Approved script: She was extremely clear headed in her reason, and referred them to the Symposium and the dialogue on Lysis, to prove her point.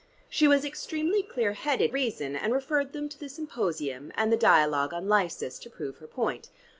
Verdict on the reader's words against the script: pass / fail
fail